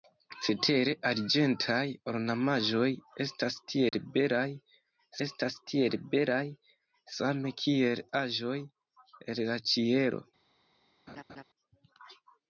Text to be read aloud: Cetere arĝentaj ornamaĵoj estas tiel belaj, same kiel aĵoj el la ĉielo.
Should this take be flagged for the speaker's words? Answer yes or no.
yes